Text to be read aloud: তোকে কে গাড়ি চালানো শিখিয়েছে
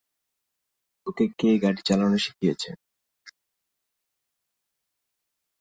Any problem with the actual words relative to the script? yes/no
no